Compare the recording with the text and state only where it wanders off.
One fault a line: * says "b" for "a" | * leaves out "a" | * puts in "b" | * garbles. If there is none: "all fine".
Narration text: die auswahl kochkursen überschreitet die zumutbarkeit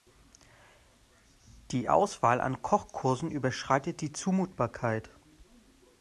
* puts in "an"